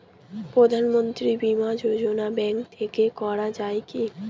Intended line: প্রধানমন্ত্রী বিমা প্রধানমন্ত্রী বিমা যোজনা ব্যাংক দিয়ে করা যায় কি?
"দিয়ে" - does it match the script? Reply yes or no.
no